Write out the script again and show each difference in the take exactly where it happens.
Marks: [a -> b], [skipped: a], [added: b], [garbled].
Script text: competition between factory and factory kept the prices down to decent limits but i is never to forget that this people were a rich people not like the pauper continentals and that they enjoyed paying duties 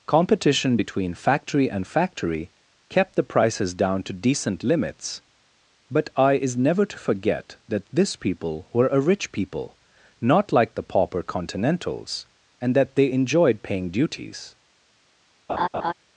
competition between factory and factory kept the prices down to decent limits but i is never to forget that this people were a rich people not like the pauper continentals and that they enjoyed paying duties